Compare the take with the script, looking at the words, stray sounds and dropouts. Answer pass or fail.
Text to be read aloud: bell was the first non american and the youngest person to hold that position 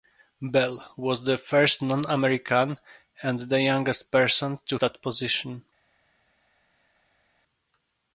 fail